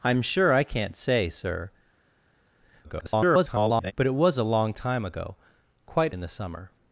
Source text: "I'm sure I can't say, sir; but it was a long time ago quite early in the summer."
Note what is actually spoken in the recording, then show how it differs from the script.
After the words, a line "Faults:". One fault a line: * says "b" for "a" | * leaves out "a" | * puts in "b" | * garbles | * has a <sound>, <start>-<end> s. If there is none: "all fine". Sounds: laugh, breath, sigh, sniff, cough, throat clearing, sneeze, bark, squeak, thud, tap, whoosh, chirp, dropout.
"I'm sure I can't say, sir; [garbled] but it was a long time ago quite in the summer."
Faults:
* garbles
* leaves out "early"